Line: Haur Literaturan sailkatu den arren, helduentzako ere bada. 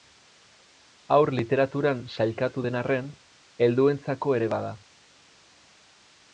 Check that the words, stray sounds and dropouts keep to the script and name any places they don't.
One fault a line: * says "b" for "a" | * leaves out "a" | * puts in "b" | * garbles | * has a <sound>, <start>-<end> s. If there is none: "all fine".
all fine